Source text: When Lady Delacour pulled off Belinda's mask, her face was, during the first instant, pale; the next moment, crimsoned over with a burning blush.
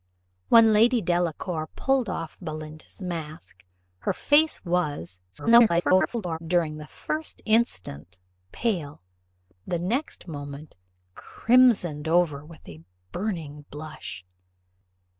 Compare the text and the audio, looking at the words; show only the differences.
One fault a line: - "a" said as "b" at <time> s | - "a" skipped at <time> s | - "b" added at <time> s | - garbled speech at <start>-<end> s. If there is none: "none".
- garbled speech at 5.3-6.4 s